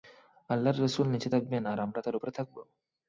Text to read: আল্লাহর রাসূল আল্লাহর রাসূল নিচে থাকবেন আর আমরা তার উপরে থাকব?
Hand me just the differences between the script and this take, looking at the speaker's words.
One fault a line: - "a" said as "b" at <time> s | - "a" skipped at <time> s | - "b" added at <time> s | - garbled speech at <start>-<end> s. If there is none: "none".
- "আল্লাহর রাসূল" skipped at 1.1 s